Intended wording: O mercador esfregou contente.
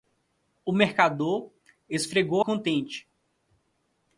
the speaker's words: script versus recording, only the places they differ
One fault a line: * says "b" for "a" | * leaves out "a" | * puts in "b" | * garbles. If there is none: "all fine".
all fine